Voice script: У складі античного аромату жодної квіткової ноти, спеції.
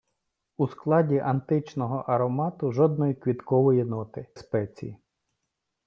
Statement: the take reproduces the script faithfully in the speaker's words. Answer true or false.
true